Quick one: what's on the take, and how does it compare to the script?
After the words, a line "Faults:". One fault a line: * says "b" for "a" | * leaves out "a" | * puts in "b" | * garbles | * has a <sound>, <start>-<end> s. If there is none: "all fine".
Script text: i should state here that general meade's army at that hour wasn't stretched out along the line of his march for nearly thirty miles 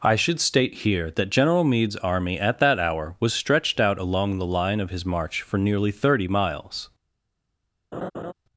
i should state here that general meade's army at that hour was stretched out along the line of his march for nearly thirty miles
Faults:
* says "was" for "wasn't"
* has a laugh, 7.9-8.3 s